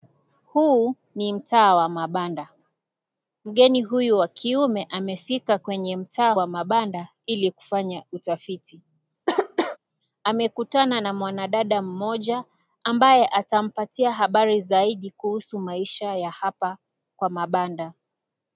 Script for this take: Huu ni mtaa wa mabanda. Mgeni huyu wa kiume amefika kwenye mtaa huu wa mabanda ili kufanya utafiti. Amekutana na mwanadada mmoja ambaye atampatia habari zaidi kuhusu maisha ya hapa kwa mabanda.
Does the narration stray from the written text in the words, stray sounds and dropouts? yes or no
yes